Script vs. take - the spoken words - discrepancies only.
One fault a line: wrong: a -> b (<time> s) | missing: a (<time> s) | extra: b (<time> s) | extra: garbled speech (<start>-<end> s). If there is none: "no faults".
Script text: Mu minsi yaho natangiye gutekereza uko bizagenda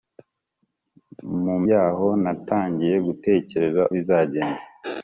missing: minsi (1.6 s)
missing: uko (3.8 s)